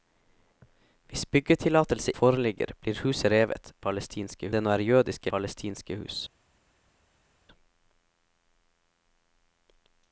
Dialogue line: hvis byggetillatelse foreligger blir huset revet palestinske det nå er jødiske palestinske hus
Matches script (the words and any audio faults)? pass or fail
pass